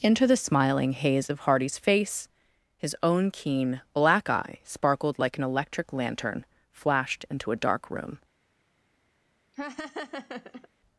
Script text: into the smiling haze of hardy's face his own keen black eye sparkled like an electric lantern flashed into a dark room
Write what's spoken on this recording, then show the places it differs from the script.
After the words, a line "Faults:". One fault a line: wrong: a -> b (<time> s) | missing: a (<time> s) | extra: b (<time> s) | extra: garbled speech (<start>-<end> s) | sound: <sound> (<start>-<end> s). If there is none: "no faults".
into the smiling haze of hardy's face his own keen black eye sparkled like an electric lantern flashed into a dark room
Faults:
sound: laugh (9.5-10.7 s)